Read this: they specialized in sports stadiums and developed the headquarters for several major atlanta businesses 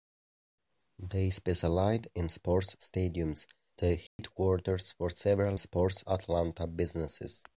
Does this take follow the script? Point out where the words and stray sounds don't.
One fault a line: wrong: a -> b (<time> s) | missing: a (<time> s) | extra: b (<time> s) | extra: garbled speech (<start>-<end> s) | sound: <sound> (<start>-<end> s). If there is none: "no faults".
missing: and developed (3.5 s)
sound: dropout (4.1-4.2 s)
wrong: major -> sports (5.6 s)